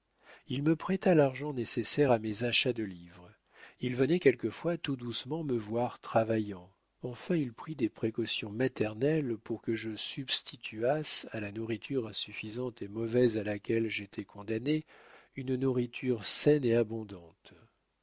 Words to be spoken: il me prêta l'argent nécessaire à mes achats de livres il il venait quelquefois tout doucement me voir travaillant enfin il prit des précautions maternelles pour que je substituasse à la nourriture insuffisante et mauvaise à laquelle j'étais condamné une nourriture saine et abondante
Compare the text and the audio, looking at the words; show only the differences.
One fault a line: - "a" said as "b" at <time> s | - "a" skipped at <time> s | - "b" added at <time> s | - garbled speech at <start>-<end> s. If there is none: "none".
- "il" skipped at 3.9 s